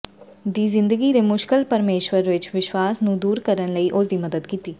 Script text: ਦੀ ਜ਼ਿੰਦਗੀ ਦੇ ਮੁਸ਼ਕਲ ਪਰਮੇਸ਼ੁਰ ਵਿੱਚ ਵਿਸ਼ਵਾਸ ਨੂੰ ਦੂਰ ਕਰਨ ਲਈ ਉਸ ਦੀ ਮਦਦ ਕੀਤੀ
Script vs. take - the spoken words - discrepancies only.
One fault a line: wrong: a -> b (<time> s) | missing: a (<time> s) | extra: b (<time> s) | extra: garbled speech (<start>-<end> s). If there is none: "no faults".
no faults